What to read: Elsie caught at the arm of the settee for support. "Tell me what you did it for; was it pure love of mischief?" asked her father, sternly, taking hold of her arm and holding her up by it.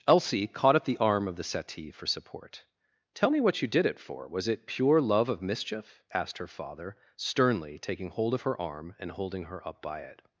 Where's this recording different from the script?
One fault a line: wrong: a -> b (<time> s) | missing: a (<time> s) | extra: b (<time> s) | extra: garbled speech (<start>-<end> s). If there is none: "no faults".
no faults